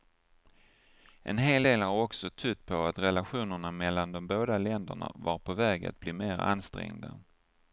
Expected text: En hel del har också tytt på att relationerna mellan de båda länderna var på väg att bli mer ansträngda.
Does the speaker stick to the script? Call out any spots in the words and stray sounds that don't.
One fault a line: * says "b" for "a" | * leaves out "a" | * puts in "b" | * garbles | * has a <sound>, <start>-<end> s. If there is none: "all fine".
all fine